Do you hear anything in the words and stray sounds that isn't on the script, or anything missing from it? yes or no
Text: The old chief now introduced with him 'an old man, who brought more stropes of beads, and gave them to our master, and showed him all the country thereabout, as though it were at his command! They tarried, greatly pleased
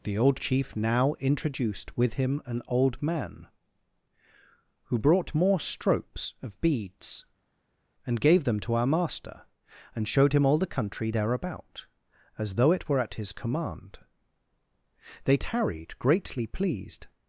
no